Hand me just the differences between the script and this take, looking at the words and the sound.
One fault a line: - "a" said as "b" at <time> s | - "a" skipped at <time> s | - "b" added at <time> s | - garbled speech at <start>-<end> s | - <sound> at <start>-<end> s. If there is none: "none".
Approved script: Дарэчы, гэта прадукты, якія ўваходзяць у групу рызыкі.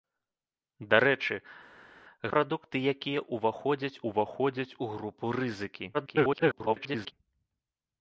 - "гэта" skipped at 1.4 s
- "ўваходзяць" added at 4.1 s
- garbled speech at 5.9-7.1 s